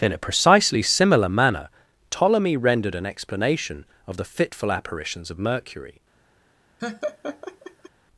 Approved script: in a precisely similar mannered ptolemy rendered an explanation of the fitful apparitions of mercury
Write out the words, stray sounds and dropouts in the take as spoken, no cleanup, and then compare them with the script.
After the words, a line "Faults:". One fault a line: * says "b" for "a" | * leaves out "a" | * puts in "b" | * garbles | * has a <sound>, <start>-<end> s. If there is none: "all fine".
in a precisely similar manner ptolemy rendered an explanation of the fitful apparitions of mercury
Faults:
* says "manner" for "mannered"
* has a laugh, 6.8-7.9 s